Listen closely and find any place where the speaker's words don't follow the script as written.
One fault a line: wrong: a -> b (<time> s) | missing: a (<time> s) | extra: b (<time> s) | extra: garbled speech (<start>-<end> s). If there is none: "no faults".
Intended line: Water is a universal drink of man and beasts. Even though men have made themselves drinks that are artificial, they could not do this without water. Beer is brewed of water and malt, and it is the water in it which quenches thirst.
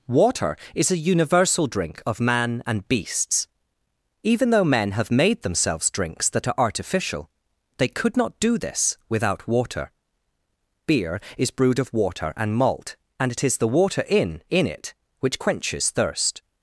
extra: in (14.5 s)